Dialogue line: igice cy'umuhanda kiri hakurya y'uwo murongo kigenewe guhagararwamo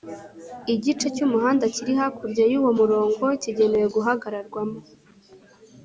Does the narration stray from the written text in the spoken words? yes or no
no